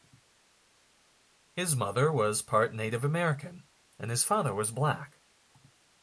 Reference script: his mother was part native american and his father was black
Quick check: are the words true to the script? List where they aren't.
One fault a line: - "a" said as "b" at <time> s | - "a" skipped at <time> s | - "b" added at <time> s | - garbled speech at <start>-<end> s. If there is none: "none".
none